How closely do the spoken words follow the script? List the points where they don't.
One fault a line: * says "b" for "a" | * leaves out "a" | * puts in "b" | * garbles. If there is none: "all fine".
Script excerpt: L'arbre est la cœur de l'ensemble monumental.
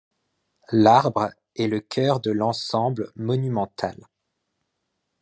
* says "le" for "la"